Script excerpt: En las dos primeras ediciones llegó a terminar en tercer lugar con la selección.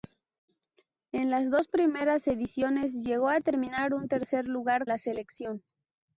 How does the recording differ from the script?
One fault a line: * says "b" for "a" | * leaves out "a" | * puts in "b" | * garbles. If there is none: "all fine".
* leaves out "con"